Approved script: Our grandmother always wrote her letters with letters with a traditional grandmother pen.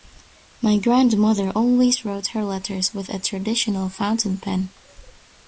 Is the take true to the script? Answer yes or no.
no